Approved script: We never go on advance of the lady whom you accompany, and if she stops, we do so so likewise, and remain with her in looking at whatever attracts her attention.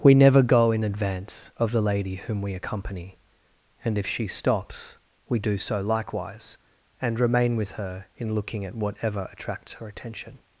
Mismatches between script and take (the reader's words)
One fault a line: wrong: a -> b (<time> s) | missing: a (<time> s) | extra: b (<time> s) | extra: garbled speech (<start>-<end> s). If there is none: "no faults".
wrong: on -> in (0.7 s)
wrong: you -> we (2.4 s)
missing: so (5.8 s)